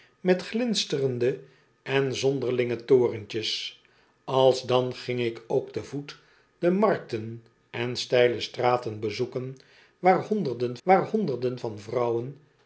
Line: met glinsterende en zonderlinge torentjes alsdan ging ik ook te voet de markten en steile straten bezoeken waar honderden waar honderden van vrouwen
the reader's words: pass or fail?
pass